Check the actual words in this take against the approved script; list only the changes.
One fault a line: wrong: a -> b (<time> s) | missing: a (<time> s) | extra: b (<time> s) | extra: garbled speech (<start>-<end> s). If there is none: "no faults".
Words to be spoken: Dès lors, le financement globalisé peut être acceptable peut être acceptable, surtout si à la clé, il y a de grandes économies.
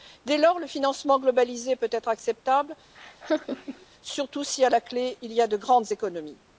missing: peut être acceptable (2.8 s)